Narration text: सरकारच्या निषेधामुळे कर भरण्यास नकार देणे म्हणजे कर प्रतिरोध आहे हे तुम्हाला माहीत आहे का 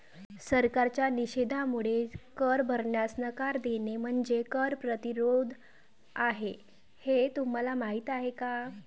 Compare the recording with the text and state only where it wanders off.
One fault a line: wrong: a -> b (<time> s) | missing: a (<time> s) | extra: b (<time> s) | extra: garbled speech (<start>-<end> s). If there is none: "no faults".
no faults